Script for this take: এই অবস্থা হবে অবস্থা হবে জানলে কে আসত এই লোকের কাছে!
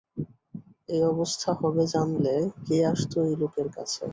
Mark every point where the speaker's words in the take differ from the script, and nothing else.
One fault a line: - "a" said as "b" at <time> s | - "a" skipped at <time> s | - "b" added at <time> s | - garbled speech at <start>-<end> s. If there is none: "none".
- "অবস্থা হবে" skipped at 1.8 s